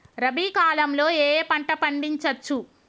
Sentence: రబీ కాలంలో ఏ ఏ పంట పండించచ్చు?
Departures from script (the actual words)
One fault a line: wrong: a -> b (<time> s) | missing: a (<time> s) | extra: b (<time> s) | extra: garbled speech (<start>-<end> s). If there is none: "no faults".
no faults